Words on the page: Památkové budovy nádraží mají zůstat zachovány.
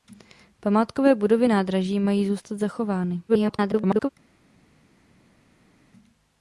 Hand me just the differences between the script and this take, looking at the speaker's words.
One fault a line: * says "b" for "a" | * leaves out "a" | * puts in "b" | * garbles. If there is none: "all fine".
* garbles